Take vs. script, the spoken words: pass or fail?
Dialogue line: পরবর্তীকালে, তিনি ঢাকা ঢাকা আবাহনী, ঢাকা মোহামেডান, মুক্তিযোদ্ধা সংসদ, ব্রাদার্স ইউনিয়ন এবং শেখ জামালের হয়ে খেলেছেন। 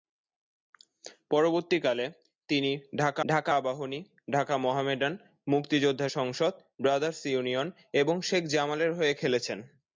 pass